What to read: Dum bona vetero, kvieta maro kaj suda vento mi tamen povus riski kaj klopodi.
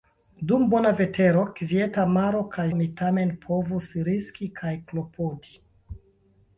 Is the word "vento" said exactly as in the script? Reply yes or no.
no